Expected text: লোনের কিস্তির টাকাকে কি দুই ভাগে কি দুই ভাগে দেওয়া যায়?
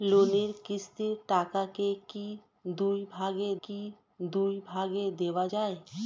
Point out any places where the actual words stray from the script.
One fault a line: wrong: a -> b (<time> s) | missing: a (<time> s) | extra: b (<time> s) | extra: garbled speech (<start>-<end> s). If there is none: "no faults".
no faults